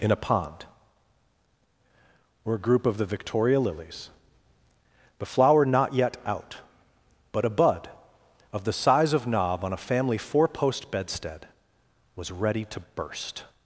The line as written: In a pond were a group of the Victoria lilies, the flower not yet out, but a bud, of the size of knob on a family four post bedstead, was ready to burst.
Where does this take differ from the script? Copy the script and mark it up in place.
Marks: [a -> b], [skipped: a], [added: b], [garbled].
In a pond were a group of the Victoria lilies, the flower not yet out, but a bud, of the size of knob on a family four post bedstead, was ready to burst.